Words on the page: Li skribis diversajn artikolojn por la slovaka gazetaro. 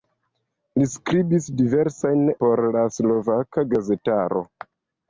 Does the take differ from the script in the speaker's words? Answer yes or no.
yes